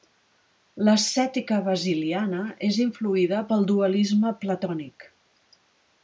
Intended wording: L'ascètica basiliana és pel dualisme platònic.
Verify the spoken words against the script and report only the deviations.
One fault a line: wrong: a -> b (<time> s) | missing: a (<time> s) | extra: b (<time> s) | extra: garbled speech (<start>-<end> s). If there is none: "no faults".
extra: influïda (2.9 s)